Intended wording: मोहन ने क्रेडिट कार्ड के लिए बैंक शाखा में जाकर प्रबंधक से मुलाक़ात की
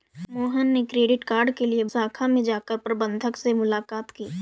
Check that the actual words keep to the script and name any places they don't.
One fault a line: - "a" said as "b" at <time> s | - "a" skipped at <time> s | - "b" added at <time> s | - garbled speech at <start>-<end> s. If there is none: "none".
- "बैंक" skipped at 1.8 s